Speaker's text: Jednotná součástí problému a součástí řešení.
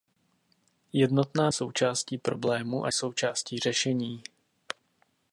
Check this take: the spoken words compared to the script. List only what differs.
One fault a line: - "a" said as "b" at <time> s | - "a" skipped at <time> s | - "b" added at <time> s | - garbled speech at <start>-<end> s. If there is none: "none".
none